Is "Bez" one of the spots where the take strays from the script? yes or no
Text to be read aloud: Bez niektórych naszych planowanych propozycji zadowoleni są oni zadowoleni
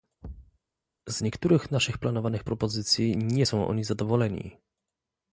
yes